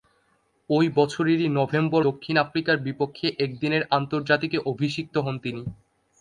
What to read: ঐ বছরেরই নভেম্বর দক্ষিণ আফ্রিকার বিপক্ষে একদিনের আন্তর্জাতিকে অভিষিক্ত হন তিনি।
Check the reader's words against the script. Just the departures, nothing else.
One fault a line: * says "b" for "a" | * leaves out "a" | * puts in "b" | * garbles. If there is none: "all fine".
all fine